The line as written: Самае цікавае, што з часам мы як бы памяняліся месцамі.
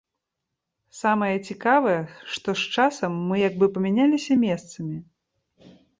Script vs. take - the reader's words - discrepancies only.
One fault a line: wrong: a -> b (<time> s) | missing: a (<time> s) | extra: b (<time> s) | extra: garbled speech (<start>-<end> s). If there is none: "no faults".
no faults